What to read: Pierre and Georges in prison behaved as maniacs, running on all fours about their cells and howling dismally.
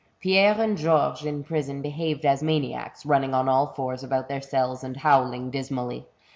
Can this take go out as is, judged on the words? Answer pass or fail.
pass